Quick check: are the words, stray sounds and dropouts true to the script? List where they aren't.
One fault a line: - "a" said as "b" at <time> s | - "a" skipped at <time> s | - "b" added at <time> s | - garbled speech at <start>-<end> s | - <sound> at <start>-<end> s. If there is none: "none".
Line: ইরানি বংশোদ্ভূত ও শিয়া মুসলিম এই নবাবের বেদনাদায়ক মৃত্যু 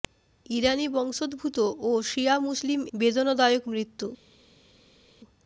- "এই নবাবের" skipped at 2.8 s